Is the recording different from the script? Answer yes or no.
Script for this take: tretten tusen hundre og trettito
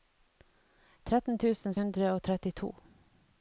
no